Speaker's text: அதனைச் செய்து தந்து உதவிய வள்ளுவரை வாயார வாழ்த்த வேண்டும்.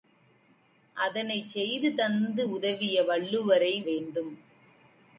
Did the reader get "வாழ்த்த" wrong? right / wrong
wrong